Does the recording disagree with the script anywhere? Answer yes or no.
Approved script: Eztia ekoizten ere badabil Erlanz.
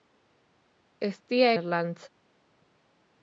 yes